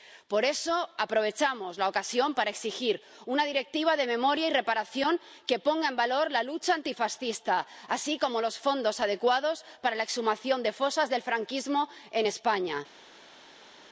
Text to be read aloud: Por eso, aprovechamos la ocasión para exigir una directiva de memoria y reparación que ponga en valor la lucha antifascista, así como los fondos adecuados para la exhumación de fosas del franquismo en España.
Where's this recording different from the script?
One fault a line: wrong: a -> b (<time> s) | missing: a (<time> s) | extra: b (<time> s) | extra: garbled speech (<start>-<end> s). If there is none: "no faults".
no faults